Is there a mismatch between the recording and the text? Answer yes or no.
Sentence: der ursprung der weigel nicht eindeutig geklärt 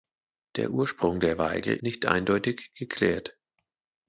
no